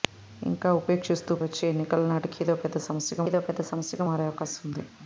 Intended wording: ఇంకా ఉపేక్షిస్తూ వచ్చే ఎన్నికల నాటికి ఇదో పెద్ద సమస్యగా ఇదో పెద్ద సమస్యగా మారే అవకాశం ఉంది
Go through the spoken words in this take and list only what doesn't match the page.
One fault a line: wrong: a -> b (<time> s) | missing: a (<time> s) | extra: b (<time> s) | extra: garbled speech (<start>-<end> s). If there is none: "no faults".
no faults